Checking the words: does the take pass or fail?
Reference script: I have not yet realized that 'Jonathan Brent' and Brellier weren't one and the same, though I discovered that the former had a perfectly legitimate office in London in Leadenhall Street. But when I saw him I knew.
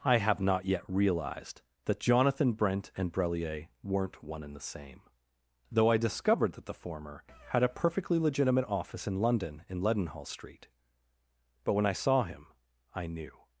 pass